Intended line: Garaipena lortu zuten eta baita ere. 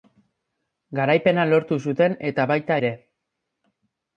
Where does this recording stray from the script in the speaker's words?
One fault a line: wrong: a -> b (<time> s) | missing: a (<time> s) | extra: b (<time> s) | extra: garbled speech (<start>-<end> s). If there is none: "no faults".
no faults